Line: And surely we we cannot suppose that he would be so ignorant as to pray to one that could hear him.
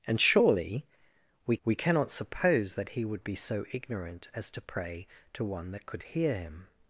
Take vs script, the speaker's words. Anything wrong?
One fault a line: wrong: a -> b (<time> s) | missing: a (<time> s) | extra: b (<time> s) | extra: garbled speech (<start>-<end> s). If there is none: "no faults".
no faults